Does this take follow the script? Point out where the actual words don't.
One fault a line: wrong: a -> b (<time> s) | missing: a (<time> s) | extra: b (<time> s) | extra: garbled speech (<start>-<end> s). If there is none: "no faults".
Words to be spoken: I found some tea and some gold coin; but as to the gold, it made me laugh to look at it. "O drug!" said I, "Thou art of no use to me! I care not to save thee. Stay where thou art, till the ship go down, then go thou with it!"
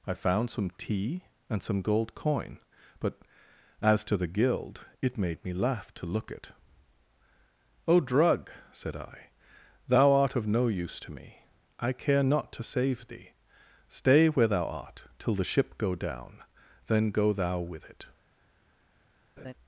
wrong: gold -> guild (4.3 s)
missing: at (6.3 s)